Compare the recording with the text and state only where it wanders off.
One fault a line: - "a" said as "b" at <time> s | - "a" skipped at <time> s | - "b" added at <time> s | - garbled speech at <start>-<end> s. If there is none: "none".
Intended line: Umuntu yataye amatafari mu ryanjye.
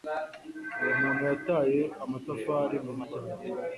none